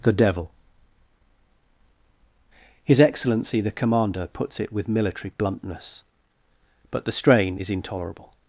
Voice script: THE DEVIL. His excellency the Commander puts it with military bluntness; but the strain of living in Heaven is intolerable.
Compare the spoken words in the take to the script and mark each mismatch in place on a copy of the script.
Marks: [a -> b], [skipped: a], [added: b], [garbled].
THE DEVIL. His excellency the Commander puts it with military bluntness; but the strain [skipped: of living in Heaven] is intolerable.